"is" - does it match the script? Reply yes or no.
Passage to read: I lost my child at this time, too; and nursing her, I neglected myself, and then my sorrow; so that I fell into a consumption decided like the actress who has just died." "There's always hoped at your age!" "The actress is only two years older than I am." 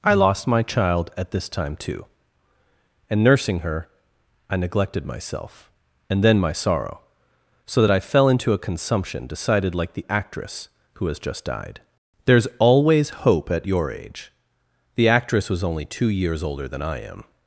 no